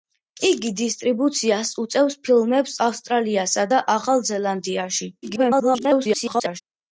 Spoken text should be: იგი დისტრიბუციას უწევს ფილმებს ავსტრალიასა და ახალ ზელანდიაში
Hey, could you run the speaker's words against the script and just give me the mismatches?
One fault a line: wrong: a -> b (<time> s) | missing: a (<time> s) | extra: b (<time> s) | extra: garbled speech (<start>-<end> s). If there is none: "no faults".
extra: garbled speech (5.2-6.6 s)